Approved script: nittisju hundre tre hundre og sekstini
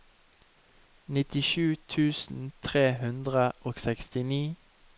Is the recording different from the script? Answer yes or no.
yes